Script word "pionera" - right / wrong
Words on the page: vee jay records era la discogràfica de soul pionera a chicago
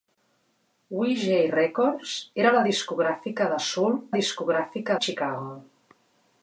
wrong